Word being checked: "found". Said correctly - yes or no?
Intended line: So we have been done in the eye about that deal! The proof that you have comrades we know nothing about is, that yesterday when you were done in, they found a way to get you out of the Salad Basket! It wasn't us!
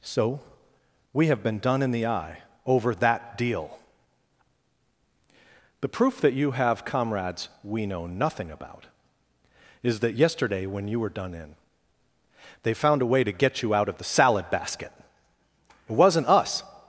yes